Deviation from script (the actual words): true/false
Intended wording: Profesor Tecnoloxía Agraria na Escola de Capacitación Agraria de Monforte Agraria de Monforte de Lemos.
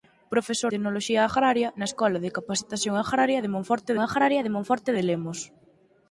false